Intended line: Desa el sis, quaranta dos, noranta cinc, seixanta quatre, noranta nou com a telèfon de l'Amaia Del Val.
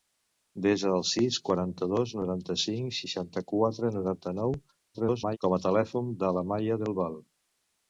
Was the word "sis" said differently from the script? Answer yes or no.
no